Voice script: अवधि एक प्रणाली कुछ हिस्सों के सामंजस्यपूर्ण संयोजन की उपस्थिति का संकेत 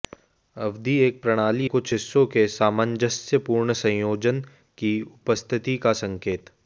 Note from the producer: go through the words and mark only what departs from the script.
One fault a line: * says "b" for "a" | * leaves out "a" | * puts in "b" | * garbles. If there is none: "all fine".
all fine